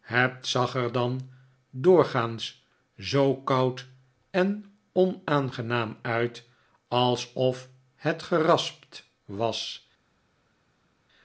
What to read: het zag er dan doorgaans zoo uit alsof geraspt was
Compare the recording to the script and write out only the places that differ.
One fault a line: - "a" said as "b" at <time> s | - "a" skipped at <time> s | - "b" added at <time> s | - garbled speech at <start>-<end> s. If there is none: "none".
- "koud en onaangenaam" added at 3.4 s
- "het" added at 8.0 s